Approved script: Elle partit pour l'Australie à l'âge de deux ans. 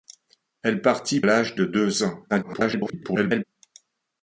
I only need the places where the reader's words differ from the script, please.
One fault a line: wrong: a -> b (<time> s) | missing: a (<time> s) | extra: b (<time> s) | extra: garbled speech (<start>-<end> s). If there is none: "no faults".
missing: pour l'Australie à (1.2 s)
extra: garbled speech (2.3-3.4 s)